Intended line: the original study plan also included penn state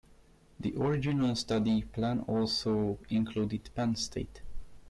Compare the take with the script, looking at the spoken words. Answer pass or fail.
pass